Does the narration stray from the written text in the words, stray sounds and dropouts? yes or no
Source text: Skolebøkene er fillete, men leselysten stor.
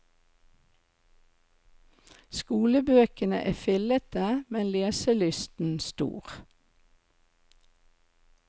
no